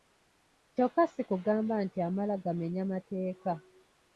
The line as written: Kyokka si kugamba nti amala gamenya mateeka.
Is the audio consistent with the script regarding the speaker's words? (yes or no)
yes